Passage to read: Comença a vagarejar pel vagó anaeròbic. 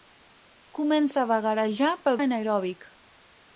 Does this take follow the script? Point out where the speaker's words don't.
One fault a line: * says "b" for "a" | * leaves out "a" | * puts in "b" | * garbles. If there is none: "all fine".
* leaves out "vagó"